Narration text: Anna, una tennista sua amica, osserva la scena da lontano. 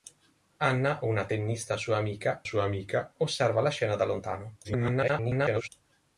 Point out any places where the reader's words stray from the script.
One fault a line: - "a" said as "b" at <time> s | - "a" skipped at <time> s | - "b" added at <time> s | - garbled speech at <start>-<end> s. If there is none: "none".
- "sua amica" added at 2.4 s
- garbled speech at 4.6-5.7 s